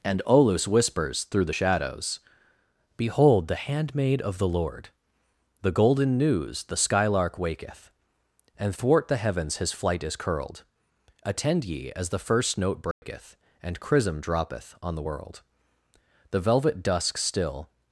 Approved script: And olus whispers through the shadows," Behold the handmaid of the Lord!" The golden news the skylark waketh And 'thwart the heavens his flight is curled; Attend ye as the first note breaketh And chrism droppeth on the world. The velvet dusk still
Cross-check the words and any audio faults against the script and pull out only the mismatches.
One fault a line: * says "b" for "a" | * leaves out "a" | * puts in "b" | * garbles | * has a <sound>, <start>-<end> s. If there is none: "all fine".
* has a dropout, 12.9-13.0 s